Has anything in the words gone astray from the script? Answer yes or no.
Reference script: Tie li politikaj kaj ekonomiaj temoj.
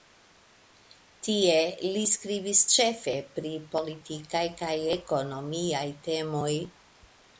yes